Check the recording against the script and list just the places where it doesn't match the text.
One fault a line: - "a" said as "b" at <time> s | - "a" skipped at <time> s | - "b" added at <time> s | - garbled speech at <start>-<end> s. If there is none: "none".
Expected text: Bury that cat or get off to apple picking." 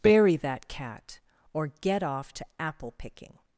none